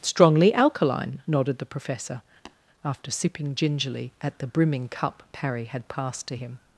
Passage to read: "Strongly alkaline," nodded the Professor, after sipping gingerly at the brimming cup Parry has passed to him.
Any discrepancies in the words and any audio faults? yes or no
yes